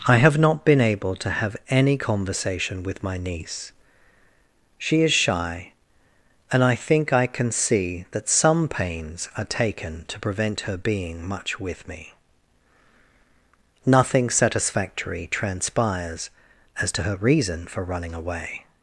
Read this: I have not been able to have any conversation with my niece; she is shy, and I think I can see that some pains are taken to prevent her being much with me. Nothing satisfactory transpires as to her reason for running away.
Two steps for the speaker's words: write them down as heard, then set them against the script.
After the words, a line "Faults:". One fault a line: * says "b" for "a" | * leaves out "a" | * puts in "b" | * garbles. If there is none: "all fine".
I have not been able to have any conversation with my niece; she is shy, and I think I can see that some pains are taken to prevent her being much with me. Nothing satisfactory transpires as to her reason for running away.
Faults:
all fine